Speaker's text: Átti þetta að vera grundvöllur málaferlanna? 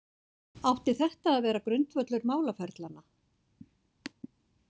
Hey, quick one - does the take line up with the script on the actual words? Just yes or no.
yes